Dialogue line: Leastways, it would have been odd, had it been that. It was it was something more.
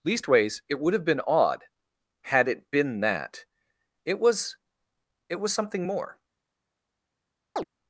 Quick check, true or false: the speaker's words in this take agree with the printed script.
true